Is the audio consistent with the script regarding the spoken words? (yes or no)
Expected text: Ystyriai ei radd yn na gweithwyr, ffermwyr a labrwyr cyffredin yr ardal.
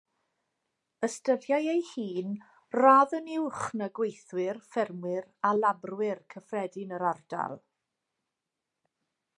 no